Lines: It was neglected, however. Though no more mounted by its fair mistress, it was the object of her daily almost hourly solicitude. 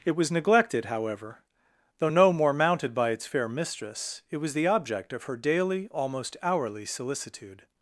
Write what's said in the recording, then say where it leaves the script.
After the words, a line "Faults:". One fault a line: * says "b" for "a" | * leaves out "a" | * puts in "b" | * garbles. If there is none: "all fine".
It was neglected, however. Though no more mounted by its fair mistress, it was the object of her daily almost hourly solicitude.
Faults:
all fine